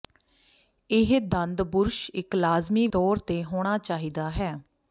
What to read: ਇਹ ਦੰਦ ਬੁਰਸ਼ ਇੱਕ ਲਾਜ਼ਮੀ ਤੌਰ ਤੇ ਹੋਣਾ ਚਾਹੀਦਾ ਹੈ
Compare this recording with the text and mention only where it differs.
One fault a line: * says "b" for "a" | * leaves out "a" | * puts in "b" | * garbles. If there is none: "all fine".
all fine